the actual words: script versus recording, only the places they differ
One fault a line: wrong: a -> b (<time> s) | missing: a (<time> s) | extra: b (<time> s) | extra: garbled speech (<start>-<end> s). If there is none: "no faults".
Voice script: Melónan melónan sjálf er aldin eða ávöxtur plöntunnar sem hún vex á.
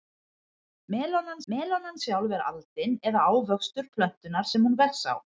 no faults